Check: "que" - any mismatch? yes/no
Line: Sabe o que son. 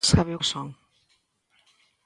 yes